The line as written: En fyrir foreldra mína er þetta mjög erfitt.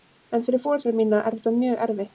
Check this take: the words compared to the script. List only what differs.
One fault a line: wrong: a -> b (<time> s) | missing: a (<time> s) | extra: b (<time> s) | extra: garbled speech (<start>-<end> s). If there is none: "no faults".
no faults